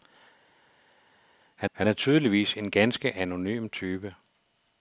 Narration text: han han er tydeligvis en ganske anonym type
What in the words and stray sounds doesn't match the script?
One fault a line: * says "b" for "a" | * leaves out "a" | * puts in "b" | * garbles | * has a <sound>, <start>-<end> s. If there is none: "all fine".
all fine